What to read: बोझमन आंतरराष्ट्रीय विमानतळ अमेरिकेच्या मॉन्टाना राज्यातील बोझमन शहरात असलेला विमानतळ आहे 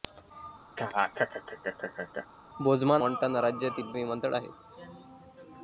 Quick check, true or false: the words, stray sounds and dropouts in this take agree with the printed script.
false